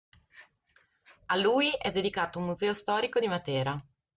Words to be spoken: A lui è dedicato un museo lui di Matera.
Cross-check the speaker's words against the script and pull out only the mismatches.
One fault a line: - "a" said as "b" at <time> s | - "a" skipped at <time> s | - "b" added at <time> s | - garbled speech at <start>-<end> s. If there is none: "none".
- "lui" said as "storico" at 2.7 s